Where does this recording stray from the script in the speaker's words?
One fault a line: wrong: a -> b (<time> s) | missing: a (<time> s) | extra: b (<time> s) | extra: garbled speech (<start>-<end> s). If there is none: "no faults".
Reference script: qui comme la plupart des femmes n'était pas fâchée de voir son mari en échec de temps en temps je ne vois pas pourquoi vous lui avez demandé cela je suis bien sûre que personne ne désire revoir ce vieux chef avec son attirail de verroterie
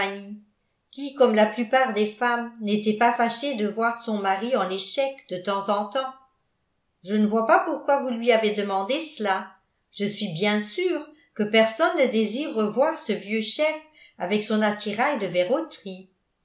no faults